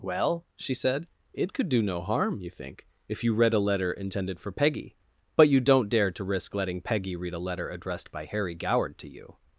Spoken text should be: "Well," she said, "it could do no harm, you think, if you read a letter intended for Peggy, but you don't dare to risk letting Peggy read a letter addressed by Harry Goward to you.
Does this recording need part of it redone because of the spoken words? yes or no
no